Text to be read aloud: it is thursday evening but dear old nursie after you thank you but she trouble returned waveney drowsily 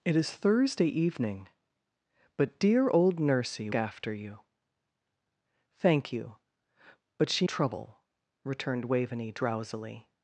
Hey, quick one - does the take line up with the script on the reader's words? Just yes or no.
yes